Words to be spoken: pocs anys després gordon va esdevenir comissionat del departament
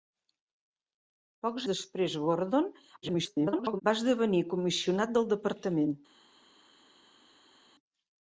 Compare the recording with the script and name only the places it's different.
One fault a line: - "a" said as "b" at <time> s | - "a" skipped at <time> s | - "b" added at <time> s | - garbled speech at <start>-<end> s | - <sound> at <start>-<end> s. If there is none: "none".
- "anys" skipped at 1.6 s
- garbled speech at 3.0-3.8 s